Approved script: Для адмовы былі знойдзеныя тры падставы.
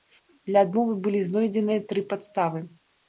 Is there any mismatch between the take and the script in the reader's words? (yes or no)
no